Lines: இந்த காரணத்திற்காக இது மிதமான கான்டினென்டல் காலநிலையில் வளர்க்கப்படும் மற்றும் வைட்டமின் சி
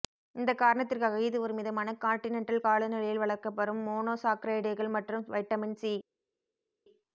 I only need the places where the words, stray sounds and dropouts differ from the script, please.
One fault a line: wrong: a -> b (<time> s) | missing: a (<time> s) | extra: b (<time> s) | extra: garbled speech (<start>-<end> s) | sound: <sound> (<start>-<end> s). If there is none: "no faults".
extra: ஒரு (1.4 s)
extra: மோனோசாக்கரைடுகள் (3.9 s)